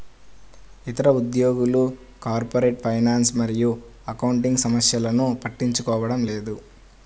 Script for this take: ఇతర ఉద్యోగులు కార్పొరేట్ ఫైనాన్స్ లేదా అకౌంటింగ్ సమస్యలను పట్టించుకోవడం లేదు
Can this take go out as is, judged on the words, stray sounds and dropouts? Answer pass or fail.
fail